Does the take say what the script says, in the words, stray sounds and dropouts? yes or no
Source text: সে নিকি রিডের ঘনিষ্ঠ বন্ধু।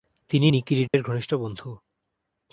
no